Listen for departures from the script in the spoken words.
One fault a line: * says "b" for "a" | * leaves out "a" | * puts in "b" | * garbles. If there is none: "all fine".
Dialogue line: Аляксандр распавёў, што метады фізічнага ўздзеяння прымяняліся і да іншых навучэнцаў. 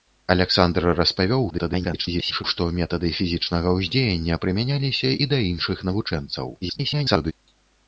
* garbles
* garbles